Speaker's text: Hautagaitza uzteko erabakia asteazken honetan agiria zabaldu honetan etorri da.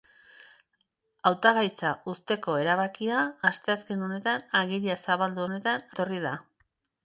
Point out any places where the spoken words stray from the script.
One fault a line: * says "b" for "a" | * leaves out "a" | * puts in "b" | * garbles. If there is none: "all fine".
all fine